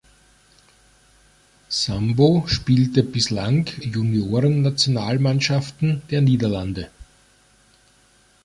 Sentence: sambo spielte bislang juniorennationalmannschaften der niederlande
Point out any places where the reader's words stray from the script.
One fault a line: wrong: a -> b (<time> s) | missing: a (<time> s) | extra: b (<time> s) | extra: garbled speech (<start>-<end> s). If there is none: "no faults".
no faults